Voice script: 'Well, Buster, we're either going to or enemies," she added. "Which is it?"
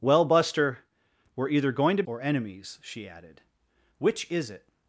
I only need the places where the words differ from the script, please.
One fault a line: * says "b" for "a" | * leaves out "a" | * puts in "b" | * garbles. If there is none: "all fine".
all fine